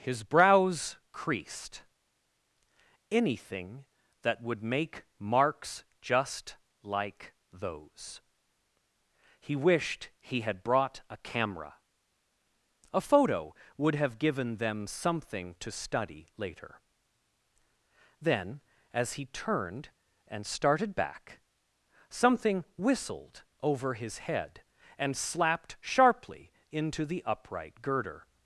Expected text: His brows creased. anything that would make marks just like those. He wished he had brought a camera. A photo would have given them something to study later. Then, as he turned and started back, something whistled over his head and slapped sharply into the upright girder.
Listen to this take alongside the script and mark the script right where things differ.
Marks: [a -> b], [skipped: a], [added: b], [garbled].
His brows creased. anything that would make marks just like those. He wished he had brought a camera. A photo would have given them something to study later. Then, as he turned and started back, something whistled over his head and slapped sharply into the upright girder.